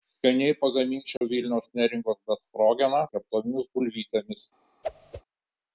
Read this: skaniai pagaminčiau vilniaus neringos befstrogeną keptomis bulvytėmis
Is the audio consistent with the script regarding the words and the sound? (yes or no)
no